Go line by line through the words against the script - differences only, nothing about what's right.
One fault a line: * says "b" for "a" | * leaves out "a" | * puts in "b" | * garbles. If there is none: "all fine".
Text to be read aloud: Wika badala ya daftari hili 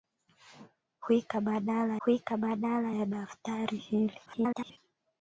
* puts in "wika badala"
* garbles